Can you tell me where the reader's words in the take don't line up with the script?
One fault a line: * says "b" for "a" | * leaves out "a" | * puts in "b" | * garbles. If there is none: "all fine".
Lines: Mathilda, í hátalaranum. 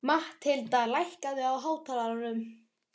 * puts in "lækkaðu"